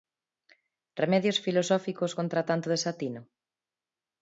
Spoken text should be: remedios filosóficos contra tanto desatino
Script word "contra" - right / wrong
right